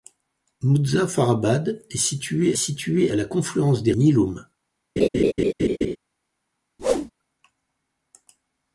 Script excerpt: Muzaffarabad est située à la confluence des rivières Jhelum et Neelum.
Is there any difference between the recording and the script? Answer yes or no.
yes